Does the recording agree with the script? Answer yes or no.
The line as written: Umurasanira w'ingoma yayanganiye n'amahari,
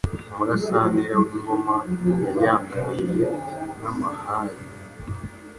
yes